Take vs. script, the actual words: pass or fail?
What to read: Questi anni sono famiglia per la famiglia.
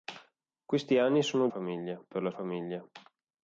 pass